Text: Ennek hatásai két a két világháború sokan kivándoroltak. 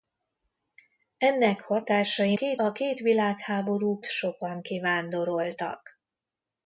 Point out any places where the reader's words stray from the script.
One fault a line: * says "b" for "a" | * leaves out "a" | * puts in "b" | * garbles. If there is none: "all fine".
all fine